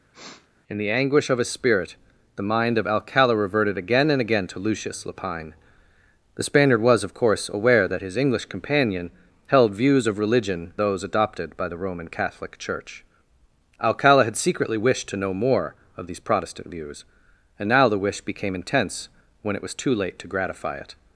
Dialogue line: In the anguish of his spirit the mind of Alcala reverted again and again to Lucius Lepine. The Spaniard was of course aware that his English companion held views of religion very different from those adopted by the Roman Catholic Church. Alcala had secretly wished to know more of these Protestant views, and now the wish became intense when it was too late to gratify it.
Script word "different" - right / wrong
wrong